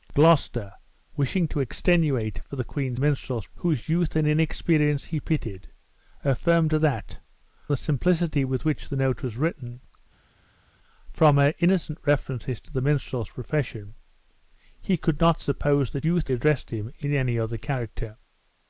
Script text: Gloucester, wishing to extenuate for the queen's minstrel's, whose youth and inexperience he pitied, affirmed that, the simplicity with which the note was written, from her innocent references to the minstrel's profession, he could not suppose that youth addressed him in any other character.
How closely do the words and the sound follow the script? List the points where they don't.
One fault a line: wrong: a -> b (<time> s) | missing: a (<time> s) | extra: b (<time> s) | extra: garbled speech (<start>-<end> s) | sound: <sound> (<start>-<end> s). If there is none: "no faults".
no faults